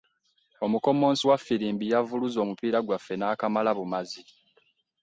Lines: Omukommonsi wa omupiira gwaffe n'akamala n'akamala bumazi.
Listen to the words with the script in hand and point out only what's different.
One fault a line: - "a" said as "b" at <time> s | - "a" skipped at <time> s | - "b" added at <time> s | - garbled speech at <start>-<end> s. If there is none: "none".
- "ffirimbi yavuluze" added at 1.4 s
- "n'akamala" skipped at 3.7 s